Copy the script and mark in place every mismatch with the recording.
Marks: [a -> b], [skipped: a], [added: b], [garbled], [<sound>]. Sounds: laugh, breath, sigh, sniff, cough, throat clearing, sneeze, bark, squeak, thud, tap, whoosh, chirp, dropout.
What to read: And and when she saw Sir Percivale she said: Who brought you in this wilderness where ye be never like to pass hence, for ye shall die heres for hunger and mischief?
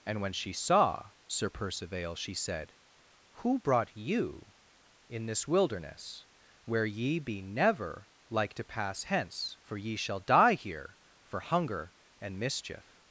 And [skipped: and] when she saw Sir Percivale she said: Who brought you in this wilderness where ye be never like to pass hence, for ye shall die [heres -> here] for hunger and mischief?